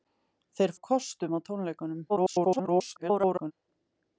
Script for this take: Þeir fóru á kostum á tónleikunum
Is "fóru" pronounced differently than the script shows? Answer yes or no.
yes